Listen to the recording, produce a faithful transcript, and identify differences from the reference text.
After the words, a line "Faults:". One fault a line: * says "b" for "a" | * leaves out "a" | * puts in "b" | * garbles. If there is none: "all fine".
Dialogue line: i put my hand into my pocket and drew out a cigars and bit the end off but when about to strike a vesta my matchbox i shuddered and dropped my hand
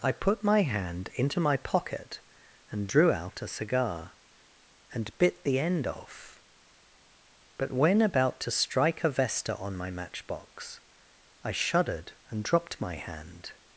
i put my hand into my pocket and drew out a cigar and bit the end off but when about to strike a vesta on my matchbox i shuddered and dropped my hand
Faults:
* says "cigar" for "cigars"
* puts in "on"